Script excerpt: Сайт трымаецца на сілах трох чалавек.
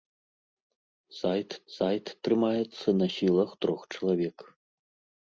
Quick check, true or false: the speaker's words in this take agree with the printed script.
false